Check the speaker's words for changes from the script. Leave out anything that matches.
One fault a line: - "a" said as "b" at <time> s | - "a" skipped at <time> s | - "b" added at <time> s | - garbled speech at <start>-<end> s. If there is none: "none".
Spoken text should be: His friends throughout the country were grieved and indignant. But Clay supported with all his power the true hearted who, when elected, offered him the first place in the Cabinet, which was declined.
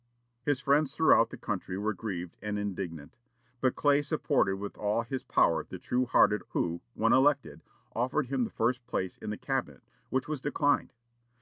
none